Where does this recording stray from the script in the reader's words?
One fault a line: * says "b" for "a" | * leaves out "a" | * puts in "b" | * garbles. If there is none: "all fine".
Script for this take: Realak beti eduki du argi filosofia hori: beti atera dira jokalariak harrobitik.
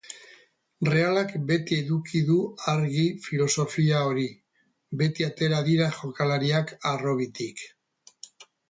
all fine